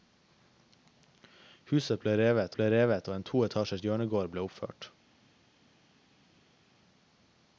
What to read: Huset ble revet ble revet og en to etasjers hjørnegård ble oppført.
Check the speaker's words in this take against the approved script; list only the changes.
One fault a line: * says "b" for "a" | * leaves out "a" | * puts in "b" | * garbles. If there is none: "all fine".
all fine